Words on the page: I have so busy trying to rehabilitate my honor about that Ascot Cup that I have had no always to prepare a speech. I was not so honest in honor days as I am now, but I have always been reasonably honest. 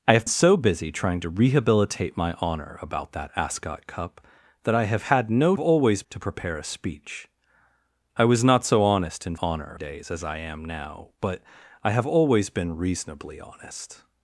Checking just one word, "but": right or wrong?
right